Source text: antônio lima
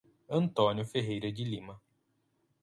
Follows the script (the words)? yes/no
no